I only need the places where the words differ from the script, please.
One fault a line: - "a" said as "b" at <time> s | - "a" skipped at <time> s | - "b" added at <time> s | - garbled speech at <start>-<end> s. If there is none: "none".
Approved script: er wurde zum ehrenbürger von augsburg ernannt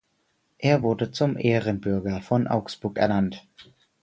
none